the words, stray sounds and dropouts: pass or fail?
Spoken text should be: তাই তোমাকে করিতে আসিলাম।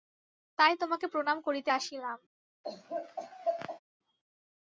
fail